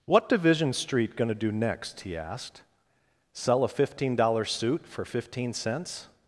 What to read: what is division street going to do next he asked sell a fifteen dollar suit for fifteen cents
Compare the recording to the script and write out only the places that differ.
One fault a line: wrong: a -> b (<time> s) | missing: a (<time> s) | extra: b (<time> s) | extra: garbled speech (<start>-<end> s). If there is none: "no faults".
missing: is (0.3 s)